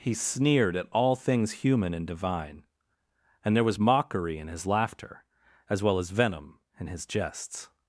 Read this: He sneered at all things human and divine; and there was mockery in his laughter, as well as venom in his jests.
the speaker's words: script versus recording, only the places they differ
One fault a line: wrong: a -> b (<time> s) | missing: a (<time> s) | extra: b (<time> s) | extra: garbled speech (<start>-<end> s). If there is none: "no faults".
no faults